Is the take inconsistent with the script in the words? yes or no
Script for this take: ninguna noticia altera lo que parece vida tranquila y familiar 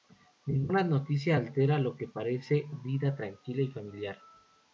no